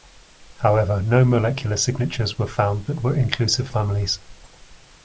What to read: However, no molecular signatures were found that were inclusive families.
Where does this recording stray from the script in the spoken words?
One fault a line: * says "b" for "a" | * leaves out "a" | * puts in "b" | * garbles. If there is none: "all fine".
all fine